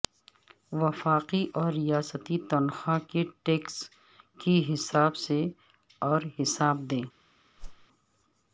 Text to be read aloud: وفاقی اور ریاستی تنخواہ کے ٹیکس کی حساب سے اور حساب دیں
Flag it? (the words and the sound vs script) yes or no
yes